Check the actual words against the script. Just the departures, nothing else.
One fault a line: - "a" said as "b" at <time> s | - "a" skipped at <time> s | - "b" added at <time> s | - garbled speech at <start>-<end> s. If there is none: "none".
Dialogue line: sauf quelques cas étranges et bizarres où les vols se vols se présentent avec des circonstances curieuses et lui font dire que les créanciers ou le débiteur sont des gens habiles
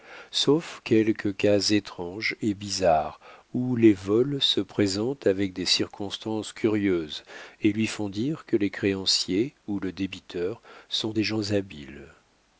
- "vols se" skipped at 4.6 s